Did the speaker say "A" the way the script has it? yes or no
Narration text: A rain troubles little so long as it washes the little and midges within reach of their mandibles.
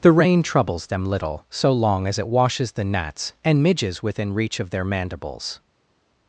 no